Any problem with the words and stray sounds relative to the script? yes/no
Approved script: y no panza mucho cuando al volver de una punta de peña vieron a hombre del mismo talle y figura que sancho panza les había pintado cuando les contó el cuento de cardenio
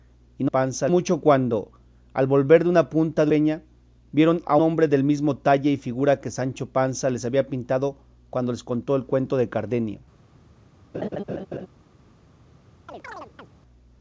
yes